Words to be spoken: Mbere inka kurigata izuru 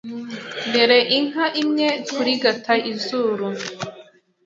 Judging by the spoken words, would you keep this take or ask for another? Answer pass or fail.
fail